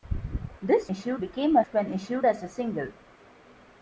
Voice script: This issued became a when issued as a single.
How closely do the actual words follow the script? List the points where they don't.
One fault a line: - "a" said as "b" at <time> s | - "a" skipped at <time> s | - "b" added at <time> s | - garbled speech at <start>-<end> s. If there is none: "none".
none